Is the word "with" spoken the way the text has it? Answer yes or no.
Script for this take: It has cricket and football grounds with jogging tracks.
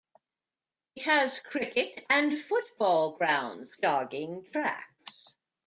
no